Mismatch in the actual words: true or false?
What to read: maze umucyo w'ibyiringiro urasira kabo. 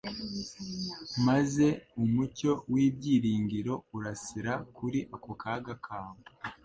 true